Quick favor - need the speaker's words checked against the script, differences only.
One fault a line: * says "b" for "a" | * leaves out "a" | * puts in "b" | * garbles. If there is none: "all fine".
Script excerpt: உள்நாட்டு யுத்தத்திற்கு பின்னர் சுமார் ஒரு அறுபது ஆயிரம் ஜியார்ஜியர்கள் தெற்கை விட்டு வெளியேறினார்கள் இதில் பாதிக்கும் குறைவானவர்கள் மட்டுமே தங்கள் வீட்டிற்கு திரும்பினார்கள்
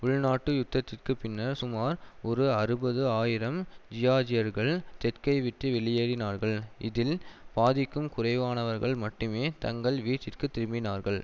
all fine